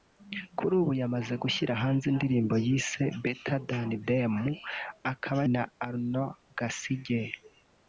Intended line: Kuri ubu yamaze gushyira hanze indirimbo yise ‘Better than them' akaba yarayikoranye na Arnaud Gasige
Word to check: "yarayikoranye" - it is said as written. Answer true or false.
false